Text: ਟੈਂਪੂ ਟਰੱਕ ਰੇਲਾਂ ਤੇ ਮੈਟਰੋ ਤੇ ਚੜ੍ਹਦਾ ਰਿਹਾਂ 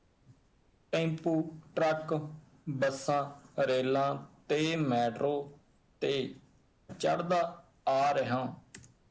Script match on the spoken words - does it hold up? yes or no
no